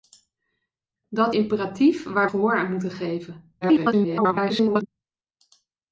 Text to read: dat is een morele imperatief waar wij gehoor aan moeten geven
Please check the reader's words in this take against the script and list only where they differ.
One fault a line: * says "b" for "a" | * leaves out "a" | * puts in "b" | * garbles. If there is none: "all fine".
* leaves out "is een morele"
* leaves out "wij"
* garbles